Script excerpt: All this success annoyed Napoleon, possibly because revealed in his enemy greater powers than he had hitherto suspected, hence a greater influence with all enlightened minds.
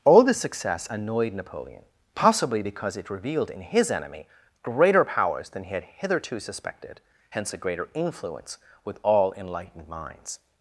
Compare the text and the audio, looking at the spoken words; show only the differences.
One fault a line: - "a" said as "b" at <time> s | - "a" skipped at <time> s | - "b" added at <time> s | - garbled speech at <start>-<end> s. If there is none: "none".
- "it" added at 3.0 s